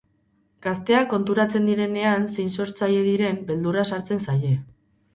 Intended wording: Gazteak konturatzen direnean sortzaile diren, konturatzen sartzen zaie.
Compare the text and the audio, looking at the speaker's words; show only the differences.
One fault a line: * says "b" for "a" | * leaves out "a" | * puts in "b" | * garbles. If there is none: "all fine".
* puts in "zein"
* says "beldurra" for "konturatzen"